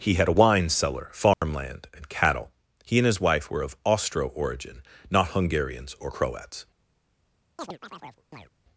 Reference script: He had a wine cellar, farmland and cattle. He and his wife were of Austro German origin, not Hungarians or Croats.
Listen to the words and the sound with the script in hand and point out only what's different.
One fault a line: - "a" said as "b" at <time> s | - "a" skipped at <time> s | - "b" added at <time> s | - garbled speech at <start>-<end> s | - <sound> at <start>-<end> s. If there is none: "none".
- dropout at 1.3-1.4 s
- "German" skipped at 4.3 s
- chirp at 7.6-8.5 s